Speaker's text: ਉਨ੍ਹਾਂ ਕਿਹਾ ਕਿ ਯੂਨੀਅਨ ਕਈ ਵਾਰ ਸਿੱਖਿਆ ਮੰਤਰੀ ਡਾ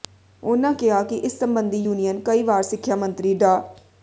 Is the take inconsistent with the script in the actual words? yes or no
yes